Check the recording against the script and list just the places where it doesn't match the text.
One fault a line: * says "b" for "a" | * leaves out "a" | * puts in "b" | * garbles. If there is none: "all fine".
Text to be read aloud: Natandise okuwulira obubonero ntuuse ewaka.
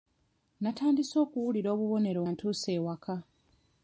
all fine